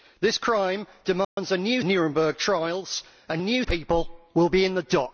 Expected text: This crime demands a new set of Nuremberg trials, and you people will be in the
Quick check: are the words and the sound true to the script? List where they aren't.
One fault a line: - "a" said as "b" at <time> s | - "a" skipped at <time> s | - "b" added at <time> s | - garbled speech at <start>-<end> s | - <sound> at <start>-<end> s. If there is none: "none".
- dropout at 1.2-1.4 s
- "set of" skipped at 1.8 s
- "you" said as "new" at 3.4 s